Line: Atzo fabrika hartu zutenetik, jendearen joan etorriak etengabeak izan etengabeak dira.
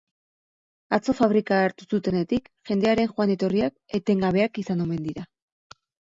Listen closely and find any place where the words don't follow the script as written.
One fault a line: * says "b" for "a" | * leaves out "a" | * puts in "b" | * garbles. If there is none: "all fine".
* says "omen" for "etengabeak"